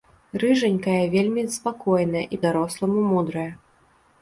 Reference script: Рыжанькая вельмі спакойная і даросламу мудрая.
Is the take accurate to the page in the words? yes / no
yes